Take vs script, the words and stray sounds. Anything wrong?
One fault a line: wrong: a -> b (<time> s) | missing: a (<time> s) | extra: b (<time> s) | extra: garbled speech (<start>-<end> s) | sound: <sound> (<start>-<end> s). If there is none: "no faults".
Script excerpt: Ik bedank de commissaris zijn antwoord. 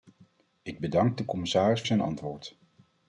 no faults